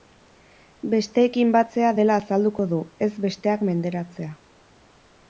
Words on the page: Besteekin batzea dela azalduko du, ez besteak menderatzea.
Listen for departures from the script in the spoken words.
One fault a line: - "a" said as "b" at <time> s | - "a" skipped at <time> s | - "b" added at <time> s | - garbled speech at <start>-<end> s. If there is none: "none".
none